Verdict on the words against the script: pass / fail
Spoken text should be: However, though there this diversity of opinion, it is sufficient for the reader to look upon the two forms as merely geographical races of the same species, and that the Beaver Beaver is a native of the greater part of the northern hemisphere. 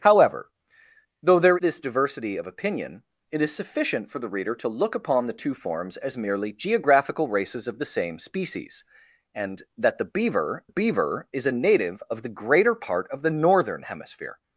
pass